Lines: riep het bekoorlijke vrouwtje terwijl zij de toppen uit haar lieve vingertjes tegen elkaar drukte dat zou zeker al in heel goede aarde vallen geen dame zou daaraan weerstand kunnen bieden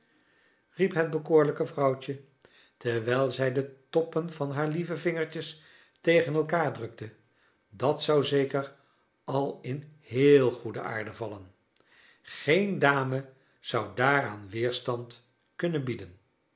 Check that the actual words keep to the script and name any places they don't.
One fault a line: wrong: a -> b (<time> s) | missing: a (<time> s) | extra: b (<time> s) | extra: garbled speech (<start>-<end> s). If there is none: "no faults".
wrong: uit -> van (4.3 s)